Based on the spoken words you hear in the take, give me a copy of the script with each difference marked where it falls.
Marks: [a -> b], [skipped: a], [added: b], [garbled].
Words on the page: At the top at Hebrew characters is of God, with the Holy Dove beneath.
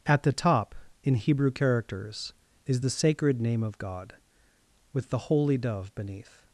At the top [at -> in] Hebrew characters is [added: the sacred name] of God, with the Holy Dove beneath.